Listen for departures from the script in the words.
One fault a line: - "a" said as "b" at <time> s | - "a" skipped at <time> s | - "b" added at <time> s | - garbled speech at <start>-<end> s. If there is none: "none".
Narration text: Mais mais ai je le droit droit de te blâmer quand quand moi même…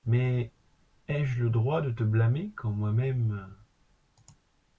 - "mais" skipped at 0.5 s
- "droit" skipped at 1.8 s
- "quand" skipped at 2.7 s